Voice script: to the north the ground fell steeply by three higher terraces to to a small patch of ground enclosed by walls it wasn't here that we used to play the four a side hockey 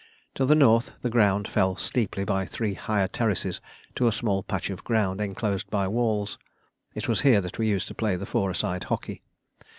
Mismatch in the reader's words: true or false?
true